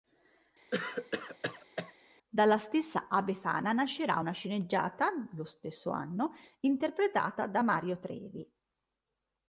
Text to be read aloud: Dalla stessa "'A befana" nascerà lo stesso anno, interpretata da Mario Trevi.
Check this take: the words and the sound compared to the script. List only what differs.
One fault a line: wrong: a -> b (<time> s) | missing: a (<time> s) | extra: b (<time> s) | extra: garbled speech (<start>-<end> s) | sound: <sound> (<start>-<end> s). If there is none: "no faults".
sound: cough (0.7-1.9 s)
extra: una sceneggiata (4.2 s)